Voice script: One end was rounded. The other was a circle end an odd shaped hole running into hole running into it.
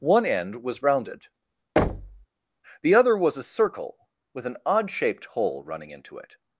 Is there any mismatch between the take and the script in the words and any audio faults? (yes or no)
yes